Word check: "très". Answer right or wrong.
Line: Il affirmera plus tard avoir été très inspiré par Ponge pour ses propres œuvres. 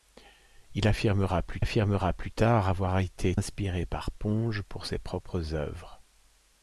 wrong